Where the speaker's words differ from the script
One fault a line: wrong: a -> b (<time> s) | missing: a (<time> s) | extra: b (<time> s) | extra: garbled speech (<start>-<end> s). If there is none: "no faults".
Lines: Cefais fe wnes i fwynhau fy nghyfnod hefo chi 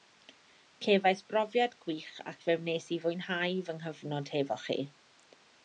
extra: brofiad gwych ac (1.3 s)